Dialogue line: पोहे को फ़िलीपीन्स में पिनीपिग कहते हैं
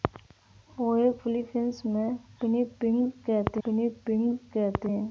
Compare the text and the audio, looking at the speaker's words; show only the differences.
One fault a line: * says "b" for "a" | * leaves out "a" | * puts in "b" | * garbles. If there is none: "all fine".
* leaves out "को"
* puts in "पिनीपिग कहते"